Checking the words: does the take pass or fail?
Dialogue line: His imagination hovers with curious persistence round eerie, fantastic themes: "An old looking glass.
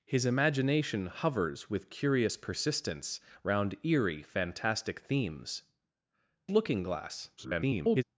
fail